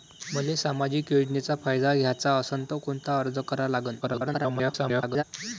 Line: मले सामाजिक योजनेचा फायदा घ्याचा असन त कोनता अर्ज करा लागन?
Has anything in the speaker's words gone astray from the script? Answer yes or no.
yes